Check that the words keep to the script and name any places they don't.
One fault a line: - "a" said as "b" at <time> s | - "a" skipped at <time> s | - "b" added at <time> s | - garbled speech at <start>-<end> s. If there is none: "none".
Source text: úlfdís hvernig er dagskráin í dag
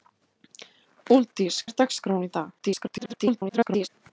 - "hvernig" skipped at 1.6 s
- garbled speech at 2.6-3.9 s